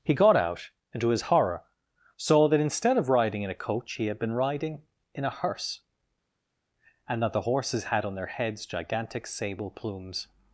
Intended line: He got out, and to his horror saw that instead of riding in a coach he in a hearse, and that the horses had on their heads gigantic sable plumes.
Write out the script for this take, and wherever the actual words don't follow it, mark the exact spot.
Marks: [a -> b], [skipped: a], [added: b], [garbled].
He got out, and to his horror saw that instead of riding in a coach he [added: had been riding] in a hearse, and that the horses had on their heads gigantic sable plumes.